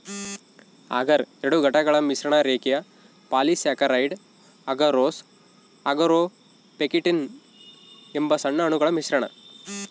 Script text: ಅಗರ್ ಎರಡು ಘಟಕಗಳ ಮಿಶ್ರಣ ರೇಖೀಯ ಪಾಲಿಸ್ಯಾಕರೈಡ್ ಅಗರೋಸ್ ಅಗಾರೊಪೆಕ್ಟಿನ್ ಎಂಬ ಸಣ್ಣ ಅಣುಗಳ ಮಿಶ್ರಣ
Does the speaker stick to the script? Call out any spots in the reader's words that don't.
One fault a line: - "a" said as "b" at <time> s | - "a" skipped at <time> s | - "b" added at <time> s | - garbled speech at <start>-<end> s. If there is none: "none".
none